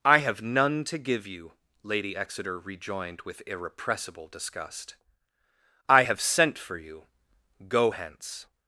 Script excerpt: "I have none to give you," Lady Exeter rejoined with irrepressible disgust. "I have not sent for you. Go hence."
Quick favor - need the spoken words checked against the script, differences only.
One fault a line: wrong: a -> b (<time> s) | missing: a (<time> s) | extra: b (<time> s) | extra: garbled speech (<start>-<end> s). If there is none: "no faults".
missing: not (6.2 s)